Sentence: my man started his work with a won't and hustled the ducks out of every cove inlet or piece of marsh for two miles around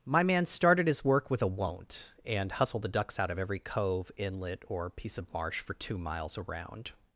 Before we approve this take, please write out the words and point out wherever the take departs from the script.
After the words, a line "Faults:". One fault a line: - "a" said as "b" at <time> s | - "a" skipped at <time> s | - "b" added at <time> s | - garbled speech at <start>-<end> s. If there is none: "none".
my man started his work with a won't and hustled the ducks out of every cove inlet or piece of marsh for two miles around
Faults:
none